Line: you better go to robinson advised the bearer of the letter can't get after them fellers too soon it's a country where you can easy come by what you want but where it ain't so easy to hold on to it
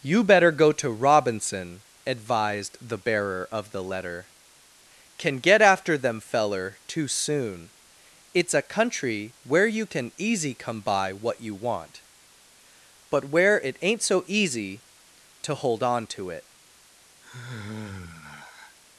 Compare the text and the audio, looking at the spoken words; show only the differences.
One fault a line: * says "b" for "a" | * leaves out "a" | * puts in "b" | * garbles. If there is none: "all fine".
* says "can" for "can't"
* says "feller" for "fellers"